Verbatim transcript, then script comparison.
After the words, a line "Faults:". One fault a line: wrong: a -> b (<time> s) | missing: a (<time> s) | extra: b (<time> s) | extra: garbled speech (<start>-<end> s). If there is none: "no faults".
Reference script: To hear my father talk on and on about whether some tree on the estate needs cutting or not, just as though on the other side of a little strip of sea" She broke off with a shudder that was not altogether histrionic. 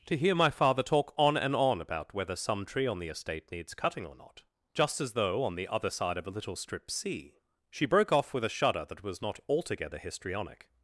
To hear my father talk on and on about whether some tree on the estate needs cutting or not, just as though on the other side of a little strip sea" She broke off with a shudder that was not altogether histrionic.
Faults:
missing: of (6.9 s)